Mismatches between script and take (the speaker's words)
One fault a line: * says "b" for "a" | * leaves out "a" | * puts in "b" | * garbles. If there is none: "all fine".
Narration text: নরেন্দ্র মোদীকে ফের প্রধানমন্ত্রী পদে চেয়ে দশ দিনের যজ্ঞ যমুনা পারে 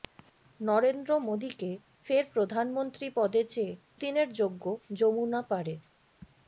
* leaves out "দশ"